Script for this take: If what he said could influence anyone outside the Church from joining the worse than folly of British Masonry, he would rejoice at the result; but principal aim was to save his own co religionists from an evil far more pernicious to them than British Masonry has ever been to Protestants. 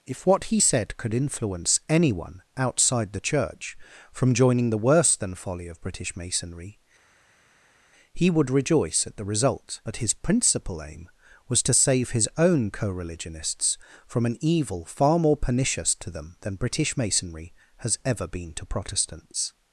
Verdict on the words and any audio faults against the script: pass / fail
fail